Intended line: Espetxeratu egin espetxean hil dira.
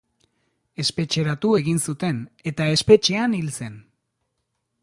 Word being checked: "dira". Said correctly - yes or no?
no